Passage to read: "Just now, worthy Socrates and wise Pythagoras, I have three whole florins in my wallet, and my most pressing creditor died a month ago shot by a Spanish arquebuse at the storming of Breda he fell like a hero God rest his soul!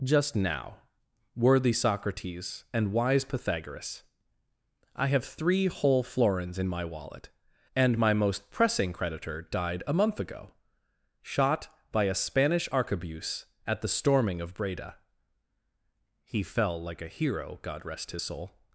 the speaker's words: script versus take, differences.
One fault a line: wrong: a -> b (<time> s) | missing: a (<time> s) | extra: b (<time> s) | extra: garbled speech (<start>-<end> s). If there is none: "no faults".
no faults